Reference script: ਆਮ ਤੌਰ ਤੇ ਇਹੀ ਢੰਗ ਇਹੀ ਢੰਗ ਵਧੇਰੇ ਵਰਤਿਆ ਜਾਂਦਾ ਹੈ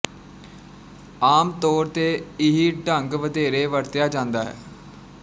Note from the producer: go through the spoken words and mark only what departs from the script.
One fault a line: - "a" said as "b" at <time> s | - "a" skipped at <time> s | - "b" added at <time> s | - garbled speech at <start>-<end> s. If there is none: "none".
- "ਇਹੀ ਢੰਗ" skipped at 3.1 s